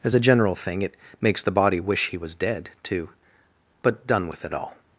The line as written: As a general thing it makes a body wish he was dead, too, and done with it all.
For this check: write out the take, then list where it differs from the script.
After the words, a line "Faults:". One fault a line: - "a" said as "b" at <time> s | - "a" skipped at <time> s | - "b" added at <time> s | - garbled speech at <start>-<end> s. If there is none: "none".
As a general thing it makes the body wish he was dead, too, but done with it all.
Faults:
- "a" said as "the" at 1.4 s
- "and" said as "but" at 3.8 s